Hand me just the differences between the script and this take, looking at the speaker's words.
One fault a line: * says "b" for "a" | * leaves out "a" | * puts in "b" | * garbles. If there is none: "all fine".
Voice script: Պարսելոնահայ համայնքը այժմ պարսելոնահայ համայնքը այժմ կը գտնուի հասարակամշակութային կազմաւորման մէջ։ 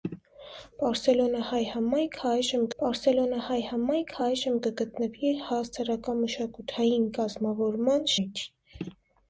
all fine